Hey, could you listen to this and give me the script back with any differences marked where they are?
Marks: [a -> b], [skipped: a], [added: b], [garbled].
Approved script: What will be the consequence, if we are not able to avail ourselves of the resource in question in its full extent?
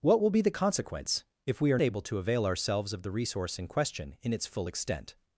What will be the consequence, if we are [skipped: not] able to avail ourselves of the resource in question in its full extent?